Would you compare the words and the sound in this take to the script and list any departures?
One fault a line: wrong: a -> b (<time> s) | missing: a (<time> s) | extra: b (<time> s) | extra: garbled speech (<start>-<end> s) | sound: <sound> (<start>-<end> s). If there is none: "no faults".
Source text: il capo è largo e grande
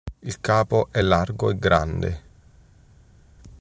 no faults